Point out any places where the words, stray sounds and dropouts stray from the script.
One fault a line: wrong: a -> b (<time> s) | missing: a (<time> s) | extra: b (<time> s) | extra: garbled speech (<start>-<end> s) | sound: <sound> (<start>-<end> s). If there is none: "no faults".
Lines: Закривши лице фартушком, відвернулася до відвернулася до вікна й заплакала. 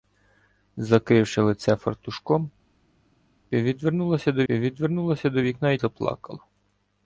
no faults